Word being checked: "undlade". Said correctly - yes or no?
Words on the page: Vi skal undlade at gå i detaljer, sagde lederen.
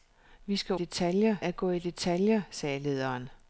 no